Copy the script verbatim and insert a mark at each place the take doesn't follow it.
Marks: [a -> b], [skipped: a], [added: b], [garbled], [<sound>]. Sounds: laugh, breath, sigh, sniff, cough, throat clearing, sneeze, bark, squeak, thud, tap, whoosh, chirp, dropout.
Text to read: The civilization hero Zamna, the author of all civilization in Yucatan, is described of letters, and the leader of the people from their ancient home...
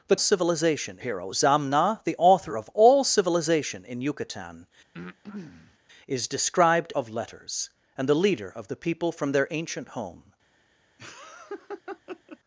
The civilization hero Zamna, the author of all civilization in Yucatan, [breath] is described of letters, and the leader of the people from their ancient home... [laugh]